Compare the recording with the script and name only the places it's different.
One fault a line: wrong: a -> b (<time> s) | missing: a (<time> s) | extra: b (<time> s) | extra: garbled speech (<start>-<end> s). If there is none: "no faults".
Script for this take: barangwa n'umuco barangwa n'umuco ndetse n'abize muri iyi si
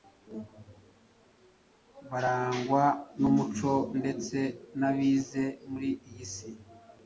missing: barangwa n'umuco (3.7 s)